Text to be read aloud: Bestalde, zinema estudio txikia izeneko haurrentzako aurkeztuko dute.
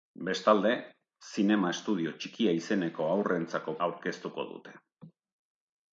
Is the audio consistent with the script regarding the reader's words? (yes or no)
yes